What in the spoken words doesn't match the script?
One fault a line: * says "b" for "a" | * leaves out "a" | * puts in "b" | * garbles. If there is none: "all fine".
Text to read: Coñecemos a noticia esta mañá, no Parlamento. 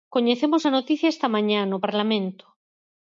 all fine